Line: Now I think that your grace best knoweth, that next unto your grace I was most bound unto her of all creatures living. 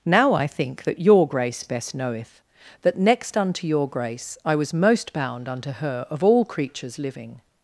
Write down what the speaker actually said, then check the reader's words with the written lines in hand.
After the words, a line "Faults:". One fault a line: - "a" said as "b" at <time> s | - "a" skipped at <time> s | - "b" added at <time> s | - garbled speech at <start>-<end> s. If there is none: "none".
Now I think that your grace best knoweth, that next unto your grace I was most bound unto her of all creatures living.
Faults:
none